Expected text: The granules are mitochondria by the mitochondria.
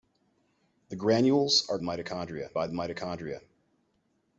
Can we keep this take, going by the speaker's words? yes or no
yes